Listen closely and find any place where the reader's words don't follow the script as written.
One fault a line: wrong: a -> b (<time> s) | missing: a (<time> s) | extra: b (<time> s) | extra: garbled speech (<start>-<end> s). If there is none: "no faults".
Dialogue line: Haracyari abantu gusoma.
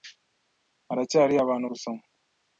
no faults